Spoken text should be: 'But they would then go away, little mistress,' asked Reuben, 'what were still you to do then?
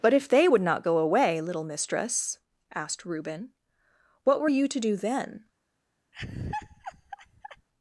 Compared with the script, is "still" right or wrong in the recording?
wrong